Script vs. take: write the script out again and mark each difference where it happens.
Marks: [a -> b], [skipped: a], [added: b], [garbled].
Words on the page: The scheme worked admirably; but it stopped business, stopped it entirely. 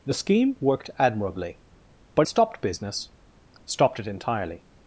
The scheme worked admirably; but [skipped: it] stopped business, stopped it entirely.